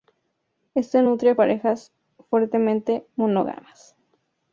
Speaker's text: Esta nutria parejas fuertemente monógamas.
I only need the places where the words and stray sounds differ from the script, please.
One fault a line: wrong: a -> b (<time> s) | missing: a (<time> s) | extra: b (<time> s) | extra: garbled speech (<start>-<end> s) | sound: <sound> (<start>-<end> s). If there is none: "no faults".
no faults